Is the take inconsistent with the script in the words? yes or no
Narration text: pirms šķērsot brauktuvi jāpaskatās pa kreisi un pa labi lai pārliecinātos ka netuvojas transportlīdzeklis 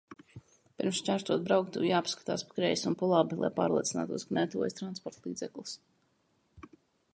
no